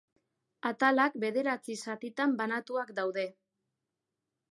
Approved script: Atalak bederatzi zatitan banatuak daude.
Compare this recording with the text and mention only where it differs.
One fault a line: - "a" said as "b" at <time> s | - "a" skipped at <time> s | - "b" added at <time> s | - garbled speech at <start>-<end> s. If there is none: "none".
none